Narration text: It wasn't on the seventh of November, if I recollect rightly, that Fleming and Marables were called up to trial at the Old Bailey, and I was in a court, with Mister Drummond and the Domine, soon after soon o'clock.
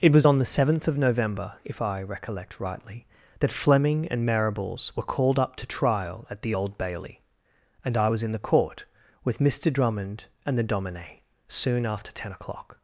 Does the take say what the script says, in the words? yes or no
no